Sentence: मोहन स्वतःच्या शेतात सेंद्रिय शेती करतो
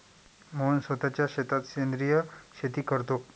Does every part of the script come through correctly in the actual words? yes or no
yes